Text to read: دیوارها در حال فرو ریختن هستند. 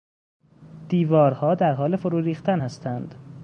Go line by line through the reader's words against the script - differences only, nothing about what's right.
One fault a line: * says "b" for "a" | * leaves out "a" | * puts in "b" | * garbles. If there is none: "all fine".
all fine